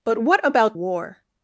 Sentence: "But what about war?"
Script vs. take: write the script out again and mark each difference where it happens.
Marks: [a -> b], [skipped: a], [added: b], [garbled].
"But what about war?"